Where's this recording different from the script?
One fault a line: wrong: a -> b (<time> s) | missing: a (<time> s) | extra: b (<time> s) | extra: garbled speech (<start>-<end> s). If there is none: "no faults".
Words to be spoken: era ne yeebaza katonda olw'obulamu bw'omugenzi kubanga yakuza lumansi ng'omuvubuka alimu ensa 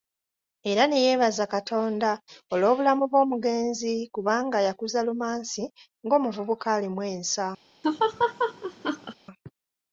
no faults